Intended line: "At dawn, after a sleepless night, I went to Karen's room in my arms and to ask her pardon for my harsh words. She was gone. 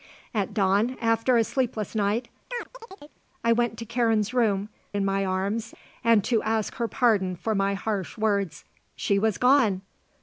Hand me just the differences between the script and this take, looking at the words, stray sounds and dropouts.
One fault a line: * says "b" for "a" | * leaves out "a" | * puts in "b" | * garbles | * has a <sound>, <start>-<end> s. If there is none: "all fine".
* has a chirp, 2.5-3.2 s